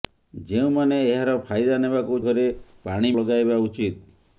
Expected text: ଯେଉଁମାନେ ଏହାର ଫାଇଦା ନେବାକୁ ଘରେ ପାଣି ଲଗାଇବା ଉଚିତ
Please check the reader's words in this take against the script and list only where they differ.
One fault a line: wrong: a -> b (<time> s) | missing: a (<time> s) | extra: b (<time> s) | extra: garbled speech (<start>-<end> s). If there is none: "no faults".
no faults